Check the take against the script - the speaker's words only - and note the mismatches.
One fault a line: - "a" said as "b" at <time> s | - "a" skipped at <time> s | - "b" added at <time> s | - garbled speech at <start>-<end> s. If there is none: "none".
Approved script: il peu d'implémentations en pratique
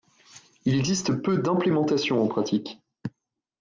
- "existe" added at 0.7 s